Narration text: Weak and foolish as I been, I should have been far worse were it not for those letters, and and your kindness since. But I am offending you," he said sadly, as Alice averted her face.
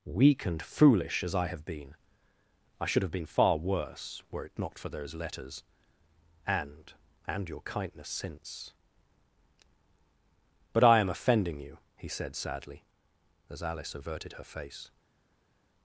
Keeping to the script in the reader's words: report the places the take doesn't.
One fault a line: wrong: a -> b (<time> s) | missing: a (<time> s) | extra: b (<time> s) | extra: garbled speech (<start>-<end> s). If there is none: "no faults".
extra: have (1.5 s)